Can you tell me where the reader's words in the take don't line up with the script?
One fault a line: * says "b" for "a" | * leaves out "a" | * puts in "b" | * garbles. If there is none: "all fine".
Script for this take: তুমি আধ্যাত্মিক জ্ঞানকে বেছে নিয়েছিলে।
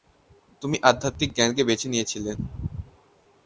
all fine